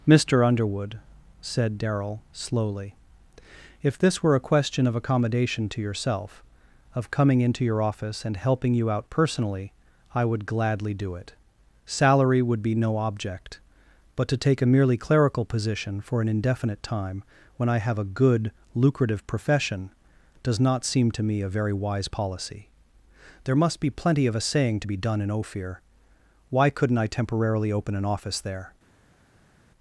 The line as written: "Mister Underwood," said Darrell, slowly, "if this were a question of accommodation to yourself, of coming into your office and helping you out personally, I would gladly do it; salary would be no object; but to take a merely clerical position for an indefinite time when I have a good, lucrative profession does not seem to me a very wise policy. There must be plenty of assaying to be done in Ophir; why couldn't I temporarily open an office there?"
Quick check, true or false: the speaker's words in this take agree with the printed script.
true